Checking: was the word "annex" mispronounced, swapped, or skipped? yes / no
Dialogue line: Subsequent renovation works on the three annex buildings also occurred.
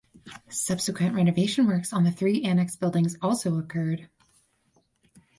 no